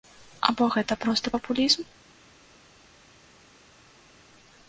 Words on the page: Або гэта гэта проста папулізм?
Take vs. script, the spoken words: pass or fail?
fail